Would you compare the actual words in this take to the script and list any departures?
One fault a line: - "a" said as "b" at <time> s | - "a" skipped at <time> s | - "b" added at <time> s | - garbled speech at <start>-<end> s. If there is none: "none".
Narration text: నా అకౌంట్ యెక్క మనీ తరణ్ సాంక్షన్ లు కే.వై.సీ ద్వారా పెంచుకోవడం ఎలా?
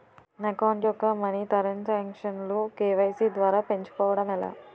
none